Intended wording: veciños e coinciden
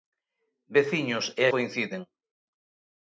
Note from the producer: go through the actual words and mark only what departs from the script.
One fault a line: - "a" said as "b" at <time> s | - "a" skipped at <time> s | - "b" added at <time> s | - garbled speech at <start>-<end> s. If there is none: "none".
none